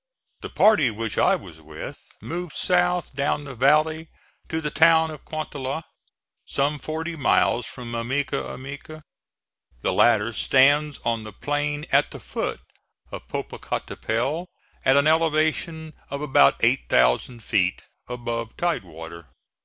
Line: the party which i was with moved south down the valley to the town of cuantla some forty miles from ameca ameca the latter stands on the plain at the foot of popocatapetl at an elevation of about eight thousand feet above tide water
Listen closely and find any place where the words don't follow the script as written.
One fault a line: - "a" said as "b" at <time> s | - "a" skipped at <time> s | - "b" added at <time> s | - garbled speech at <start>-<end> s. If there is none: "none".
none